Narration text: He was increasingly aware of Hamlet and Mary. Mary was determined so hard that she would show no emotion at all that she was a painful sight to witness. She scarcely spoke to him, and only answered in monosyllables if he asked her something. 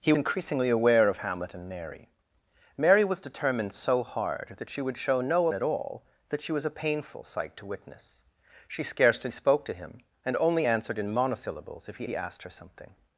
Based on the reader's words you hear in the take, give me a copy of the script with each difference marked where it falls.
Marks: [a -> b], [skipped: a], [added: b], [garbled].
He [skipped: was] increasingly aware of Hamlet and Mary. Mary was determined so hard that she would show no [skipped: emotion] at all that she was a painful sight to witness. She scarcely spoke to him, and only answered in monosyllables if he [added: he] asked her something.